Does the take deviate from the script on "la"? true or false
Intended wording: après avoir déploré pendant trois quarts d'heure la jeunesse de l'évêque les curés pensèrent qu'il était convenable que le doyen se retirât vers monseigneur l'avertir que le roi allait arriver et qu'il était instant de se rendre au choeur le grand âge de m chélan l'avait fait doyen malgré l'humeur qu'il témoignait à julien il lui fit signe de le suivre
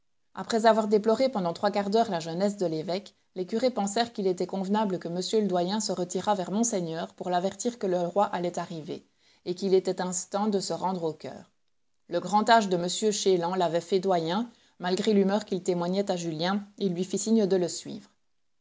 false